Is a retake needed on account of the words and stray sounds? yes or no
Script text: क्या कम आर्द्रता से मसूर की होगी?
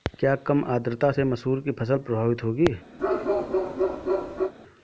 yes